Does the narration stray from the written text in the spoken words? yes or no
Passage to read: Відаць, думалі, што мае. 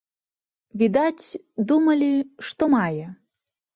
no